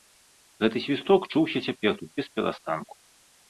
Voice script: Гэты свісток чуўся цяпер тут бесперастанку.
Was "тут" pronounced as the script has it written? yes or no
yes